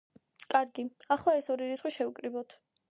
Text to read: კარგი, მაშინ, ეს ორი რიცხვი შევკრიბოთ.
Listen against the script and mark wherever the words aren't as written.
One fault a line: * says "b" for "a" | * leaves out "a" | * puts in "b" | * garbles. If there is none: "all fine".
* says "ახლა" for "მაშინ"